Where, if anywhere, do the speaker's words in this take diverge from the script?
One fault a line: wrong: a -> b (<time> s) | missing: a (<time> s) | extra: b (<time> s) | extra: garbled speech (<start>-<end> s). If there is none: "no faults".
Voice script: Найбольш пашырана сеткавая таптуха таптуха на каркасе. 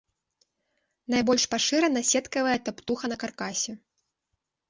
missing: таптуха (3.0 s)